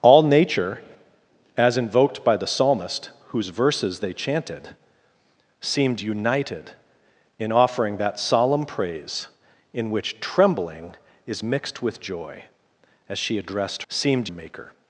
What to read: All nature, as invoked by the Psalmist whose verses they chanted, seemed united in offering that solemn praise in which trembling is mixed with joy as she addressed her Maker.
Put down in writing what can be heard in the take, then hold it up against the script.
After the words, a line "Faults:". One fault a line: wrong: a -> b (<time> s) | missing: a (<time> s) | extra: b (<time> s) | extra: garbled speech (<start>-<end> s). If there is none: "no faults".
All nature, as invoked by the Psalmist whose verses they chanted, seemed united in offering that solemn praise in which trembling is mixed with joy as she addressed seemed Maker.
Faults:
wrong: her -> seemed (13.9 s)